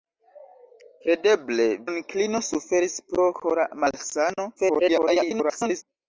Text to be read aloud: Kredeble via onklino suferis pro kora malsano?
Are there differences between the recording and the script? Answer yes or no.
yes